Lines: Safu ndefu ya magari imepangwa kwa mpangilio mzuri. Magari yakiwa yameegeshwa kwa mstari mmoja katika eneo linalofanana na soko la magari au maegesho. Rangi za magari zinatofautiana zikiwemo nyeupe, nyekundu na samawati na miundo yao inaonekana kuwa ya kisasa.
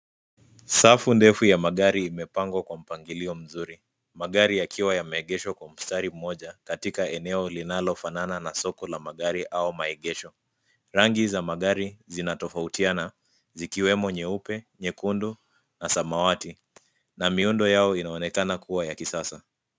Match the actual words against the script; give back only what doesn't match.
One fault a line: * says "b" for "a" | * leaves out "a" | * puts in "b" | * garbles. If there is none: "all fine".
all fine